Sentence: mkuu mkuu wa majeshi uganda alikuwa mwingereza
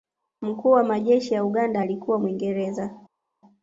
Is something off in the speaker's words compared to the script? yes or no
yes